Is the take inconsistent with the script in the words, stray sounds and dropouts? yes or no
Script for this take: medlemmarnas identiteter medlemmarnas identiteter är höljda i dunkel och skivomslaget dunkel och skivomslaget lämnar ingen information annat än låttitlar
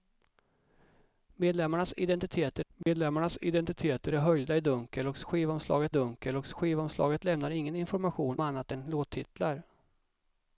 yes